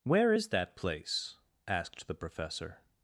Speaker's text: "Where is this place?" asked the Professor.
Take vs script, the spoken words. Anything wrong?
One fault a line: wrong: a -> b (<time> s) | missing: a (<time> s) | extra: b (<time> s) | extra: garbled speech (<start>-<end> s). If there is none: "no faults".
wrong: this -> that (0.5 s)